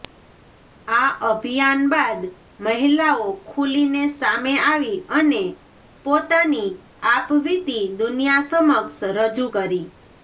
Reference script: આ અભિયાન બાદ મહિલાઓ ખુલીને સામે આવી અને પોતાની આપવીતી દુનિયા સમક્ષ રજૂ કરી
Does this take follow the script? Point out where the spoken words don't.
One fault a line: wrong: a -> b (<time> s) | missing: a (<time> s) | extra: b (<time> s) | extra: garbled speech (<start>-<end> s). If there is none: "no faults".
no faults